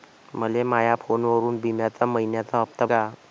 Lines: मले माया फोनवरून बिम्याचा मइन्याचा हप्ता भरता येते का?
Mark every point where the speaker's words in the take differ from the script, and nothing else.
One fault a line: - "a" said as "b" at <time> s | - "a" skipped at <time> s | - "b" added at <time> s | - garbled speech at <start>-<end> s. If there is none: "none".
- "भरता येते" skipped at 2.9 s